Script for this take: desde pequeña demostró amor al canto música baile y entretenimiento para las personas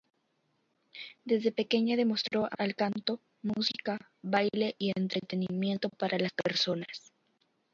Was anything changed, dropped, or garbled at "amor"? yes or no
yes